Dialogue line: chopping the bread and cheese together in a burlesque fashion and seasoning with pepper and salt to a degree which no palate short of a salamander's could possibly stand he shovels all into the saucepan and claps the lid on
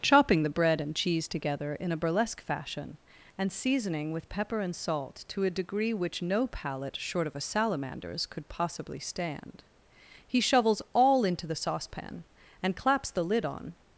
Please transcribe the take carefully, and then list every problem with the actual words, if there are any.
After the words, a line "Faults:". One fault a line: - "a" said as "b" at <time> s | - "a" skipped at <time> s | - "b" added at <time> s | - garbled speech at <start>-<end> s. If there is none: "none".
chopping the bread and cheese together in a burlesque fashion and seasoning with pepper and salt to a degree which no palate short of a salamander's could possibly stand he shovels all into the saucepan and claps the lid on
Faults:
none